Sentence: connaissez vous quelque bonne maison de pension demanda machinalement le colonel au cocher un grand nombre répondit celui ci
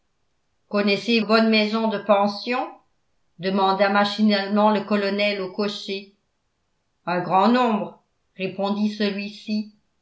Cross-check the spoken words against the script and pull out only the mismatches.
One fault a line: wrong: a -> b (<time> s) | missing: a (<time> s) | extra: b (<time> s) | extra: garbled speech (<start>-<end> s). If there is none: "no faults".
missing: vous quelque (1.2 s)